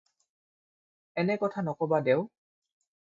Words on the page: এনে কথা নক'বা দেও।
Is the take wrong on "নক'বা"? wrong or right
right